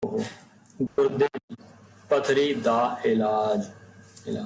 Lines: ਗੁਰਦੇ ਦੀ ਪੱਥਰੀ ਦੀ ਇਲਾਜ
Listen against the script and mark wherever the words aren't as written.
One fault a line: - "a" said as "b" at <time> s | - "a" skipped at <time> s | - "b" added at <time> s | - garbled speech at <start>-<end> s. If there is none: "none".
- "ਦੀ" said as "ਦਾ" at 2.5 s